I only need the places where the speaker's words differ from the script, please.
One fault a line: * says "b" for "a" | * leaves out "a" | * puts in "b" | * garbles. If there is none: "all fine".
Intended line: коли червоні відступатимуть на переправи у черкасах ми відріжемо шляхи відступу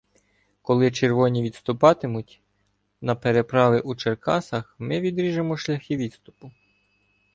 all fine